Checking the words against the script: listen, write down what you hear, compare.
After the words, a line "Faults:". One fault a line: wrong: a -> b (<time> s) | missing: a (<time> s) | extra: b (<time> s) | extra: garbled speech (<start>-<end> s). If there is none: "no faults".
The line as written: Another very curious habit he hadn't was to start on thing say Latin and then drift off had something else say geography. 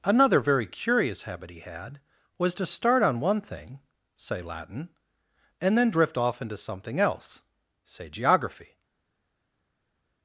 Another very curious habit he had was to start on one thing say Latin and then drift off into something else say geography.
Faults:
wrong: hadn't -> had (1.6 s)
extra: one (3.2 s)
wrong: had -> into (6.4 s)